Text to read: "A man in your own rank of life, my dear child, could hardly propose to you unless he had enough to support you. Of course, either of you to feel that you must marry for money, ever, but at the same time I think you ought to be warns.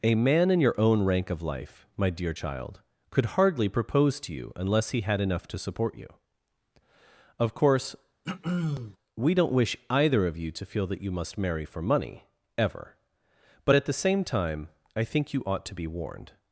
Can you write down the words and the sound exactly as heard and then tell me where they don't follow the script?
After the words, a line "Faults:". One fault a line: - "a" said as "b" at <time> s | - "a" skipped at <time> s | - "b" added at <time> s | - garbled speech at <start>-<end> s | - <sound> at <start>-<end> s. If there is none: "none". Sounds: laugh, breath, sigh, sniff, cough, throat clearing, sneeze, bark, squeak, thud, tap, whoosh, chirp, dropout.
"A man in your own rank of life, my dear child, could hardly propose to you unless he had enough to support you. Of course, we don't wish either of you to feel that you must marry for money, ever, but at the same time I think you ought to be warned.
Faults:
- throat clearing at 8.2-9.0 s
- "we don't wish" added at 9.2 s
- "warns" said as "warned" at 15.9 s